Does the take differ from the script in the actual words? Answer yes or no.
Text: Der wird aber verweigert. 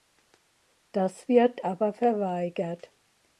yes